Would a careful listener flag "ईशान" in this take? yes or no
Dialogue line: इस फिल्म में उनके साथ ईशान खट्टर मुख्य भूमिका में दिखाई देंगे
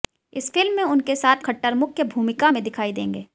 yes